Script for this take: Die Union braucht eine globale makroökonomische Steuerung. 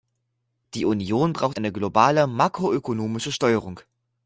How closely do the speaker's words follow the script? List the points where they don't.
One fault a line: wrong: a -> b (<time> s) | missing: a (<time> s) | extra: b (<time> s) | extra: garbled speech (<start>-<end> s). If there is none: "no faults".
no faults